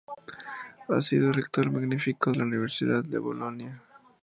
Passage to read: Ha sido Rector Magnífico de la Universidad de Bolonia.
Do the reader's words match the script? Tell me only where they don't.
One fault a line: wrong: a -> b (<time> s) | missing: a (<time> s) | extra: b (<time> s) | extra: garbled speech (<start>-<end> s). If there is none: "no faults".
missing: de (2.3 s)